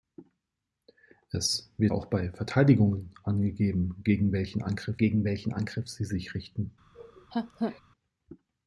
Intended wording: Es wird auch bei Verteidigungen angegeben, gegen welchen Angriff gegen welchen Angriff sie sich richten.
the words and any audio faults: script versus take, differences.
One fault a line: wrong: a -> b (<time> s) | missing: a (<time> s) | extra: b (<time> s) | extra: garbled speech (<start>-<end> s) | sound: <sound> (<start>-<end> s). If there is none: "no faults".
sound: laugh (6.9-7.8 s)